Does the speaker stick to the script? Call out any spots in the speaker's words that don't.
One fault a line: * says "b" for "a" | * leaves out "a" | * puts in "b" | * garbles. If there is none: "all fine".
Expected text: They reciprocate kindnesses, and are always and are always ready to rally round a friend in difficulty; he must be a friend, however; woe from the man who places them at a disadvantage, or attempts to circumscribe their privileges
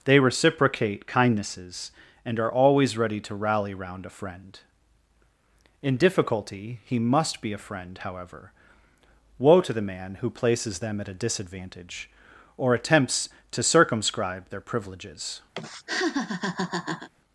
* leaves out "and are always"
* says "to" for "from"